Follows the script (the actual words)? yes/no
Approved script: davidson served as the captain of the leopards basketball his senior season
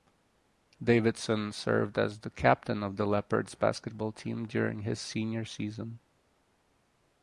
no